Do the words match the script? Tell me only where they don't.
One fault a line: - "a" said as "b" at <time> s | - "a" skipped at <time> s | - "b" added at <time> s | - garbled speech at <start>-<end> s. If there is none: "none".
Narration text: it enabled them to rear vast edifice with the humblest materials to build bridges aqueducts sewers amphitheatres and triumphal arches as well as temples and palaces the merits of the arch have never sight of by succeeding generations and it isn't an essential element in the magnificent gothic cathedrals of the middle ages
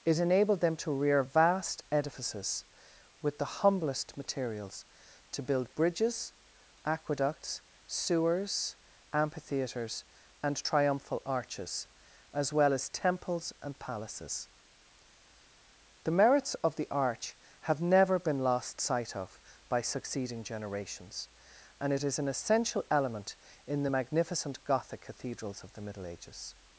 - "edifice" said as "edifices" at 1.9 s
- "been lost" added at 18.2 s
- "isn't" said as "is" at 22.0 s